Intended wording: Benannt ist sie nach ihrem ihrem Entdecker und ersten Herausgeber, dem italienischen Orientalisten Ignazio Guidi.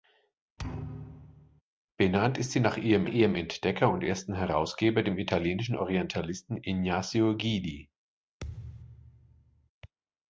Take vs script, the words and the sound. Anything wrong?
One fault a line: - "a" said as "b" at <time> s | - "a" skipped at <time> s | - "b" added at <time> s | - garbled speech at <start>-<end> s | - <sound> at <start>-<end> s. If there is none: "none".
- thud at 0.6-1.6 s
- thud at 8.4-9.7 s